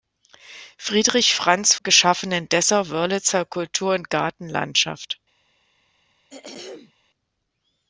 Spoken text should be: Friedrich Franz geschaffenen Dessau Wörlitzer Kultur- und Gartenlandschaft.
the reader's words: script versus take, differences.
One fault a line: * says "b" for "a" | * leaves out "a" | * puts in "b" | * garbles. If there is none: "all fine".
all fine